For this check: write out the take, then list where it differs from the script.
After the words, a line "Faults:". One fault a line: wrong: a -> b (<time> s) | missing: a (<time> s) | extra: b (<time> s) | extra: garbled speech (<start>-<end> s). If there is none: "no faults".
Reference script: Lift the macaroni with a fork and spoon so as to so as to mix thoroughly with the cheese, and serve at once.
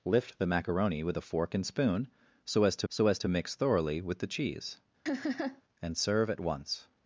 Lift the macaroni with a fork and spoon so as to so as to mix thoroughly with the cheese, and serve at once.
Faults:
no faults